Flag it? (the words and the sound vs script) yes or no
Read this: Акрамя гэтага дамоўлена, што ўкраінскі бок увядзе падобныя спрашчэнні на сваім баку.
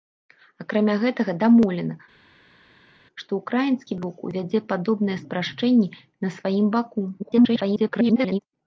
yes